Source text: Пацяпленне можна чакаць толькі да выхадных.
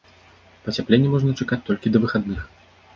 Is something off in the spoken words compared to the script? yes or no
no